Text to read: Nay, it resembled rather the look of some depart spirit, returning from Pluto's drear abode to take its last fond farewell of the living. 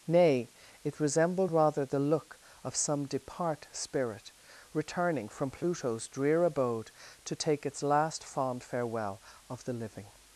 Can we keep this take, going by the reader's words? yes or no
yes